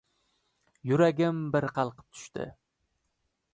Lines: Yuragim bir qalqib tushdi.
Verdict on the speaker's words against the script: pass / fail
pass